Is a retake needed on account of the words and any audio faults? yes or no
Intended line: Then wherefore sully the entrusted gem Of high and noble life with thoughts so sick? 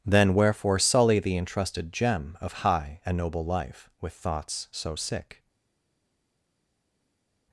no